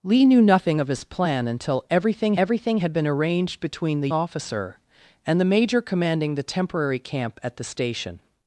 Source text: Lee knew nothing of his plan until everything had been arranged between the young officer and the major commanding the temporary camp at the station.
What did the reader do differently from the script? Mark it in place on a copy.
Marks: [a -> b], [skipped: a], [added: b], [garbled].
Lee knew nothing of his plan until everything [added: everything] had been arranged between the [skipped: young] officer and the major commanding the temporary camp at the station.